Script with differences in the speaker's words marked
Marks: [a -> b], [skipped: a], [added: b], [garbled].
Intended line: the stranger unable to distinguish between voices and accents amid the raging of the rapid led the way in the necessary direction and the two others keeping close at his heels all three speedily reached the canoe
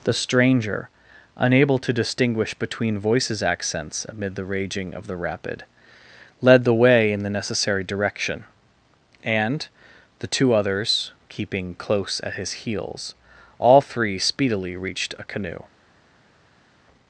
the stranger unable to distinguish between voices [skipped: and] accents amid the raging of the rapid led the way in the necessary direction and the two others keeping close at his heels all three speedily reached [the -> a] canoe